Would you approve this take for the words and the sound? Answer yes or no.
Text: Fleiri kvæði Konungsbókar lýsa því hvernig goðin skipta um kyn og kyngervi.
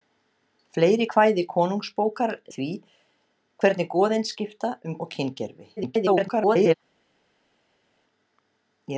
no